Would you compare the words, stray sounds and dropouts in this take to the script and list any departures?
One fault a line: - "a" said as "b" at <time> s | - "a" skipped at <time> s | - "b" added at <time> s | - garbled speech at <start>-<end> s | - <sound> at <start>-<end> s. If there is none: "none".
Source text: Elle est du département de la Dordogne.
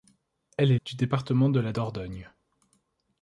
none